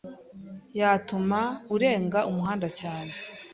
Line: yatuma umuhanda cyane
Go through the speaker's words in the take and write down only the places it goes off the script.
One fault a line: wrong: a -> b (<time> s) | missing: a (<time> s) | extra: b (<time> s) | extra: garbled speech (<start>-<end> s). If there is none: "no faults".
extra: urenga (1.7 s)